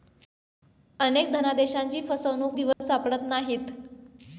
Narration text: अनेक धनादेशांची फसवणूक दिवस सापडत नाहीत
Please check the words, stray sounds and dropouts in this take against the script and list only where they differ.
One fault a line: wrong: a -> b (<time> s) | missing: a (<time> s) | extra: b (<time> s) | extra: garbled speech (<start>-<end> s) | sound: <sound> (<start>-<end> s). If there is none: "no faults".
sound: dropout (2.7-2.8 s)